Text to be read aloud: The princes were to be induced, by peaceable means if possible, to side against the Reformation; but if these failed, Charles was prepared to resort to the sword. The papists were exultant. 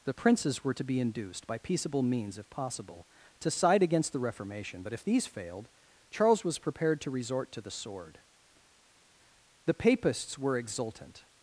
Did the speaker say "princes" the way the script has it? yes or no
yes